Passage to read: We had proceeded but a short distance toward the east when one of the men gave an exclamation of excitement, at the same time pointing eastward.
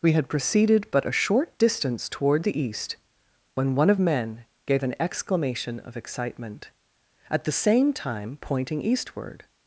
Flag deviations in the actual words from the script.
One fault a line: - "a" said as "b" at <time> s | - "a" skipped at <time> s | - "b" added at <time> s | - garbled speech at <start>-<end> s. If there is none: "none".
- "the" skipped at 4.0 s